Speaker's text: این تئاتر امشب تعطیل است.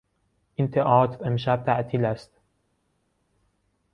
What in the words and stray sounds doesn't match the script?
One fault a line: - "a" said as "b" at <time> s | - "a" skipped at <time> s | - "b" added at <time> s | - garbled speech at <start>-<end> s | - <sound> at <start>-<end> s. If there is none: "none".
none